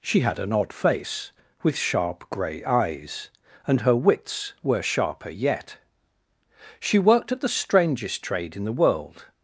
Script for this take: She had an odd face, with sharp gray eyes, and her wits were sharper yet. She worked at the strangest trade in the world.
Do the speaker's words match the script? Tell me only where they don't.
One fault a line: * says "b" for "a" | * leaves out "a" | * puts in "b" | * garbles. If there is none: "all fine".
all fine